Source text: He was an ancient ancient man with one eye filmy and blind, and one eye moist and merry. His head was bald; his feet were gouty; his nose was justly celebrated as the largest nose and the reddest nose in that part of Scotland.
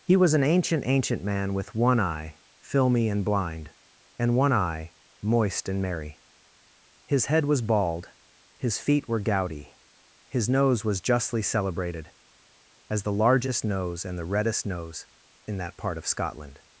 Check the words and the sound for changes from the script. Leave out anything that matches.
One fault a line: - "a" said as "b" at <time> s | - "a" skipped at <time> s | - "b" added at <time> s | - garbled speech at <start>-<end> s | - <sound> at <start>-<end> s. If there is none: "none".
none